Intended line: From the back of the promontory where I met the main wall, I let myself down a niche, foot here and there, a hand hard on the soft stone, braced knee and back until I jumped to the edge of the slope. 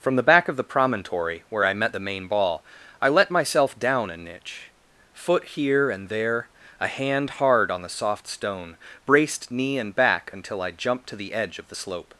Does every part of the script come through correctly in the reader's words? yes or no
no